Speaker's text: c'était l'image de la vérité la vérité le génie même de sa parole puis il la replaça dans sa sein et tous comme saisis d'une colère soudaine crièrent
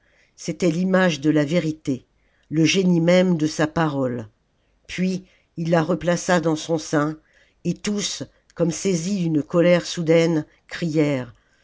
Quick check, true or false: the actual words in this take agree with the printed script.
false